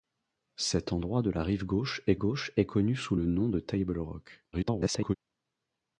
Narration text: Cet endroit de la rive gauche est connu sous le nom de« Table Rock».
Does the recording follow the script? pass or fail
fail